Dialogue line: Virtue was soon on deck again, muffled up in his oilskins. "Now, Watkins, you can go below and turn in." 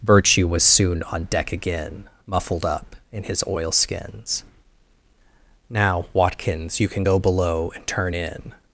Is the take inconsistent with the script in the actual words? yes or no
no